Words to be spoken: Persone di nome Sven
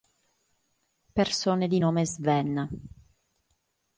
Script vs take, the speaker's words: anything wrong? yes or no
no